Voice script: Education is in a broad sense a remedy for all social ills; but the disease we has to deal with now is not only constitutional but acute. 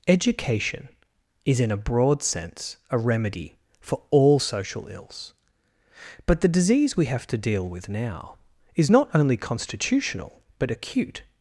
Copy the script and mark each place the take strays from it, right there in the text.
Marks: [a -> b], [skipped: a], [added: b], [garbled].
Education is in a broad sense a remedy for all social ills; but the disease we [has -> have] to deal with now is not only constitutional but acute.